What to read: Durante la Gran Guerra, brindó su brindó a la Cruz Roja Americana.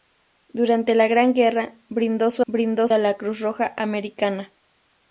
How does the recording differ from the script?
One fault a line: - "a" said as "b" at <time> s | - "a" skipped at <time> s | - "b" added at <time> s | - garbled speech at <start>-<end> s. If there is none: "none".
none